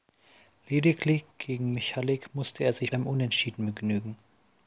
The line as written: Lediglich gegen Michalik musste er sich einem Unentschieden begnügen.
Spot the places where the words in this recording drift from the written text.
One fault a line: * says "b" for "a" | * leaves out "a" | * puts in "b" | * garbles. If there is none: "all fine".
all fine